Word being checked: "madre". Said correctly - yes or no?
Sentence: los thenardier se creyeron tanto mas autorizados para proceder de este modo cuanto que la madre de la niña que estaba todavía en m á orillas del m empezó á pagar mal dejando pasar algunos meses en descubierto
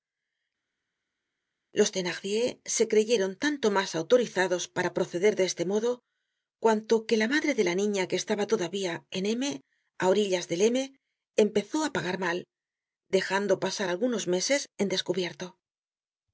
yes